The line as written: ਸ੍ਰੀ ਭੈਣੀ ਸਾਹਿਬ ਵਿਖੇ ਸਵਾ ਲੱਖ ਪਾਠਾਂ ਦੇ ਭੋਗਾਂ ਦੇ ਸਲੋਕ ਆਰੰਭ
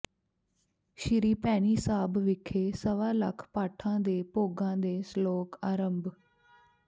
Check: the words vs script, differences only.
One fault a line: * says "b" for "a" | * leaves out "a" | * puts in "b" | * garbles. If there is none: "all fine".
all fine